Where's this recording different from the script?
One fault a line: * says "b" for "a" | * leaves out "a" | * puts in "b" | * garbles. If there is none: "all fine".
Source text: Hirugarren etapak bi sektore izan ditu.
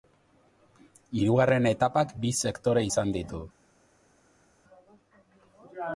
all fine